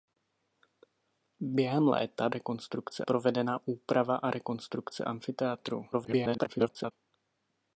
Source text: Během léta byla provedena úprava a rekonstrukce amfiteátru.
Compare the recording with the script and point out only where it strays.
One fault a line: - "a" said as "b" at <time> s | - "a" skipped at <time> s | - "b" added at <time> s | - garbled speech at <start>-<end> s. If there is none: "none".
- "byla" said as "rekonstrukce" at 2.3 s
- garbled speech at 5.9-6.9 s